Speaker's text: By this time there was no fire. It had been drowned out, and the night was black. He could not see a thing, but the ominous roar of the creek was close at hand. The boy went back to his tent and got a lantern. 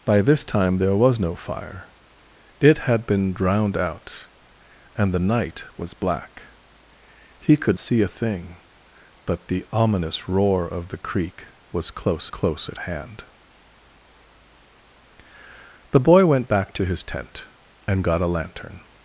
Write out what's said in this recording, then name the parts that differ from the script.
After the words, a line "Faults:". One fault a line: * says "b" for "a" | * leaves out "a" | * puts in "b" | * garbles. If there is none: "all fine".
By this time there was no fire. It had been drowned out, and the night was black. He could see a thing, but the ominous roar of the creek was close close at hand. The boy went back to his tent and got a lantern.
Faults:
* leaves out "not"
* puts in "close"